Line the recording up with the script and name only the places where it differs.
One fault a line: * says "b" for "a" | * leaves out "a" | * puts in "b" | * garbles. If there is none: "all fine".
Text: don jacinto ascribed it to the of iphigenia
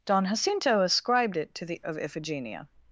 all fine